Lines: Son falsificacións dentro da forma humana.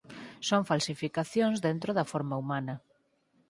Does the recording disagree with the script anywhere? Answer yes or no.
no